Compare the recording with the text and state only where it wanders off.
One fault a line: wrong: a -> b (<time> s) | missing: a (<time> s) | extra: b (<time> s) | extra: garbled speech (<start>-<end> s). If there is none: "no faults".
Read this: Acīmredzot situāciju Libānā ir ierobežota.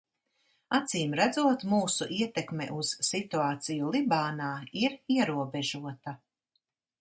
extra: mūsu ietekme uz (1.7 s)